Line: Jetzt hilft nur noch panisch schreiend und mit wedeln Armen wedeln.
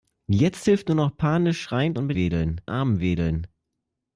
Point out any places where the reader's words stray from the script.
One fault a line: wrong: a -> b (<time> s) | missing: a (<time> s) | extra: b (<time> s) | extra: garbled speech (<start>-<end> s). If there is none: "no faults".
no faults